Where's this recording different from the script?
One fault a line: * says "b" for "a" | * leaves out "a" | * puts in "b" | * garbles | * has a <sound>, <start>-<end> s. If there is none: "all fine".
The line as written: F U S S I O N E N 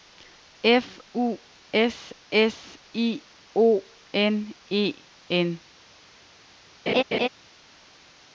* has a laugh, 6.9-7.3 s